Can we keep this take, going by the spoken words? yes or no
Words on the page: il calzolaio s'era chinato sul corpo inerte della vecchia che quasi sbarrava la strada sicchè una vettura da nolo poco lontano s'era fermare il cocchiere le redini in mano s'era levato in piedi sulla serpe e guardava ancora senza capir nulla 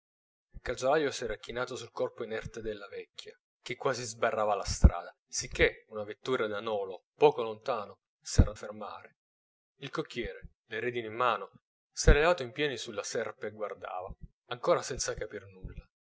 yes